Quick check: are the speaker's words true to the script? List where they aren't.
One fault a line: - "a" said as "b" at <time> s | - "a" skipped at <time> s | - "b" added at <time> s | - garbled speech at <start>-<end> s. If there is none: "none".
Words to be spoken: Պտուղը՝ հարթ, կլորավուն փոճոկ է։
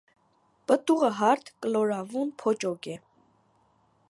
none